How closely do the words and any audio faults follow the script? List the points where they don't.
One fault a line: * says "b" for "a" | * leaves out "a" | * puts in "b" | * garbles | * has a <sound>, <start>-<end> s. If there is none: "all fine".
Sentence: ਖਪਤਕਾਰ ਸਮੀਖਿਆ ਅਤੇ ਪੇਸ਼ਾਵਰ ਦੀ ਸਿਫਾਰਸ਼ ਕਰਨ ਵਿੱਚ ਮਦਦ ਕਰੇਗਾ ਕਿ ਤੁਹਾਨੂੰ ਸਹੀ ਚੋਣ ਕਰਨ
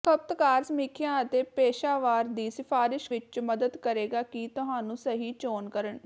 * leaves out "ਕਰਨ"